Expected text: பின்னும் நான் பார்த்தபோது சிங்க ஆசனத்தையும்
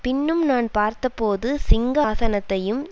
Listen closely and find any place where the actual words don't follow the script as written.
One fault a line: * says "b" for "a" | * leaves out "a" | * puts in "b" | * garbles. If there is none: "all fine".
all fine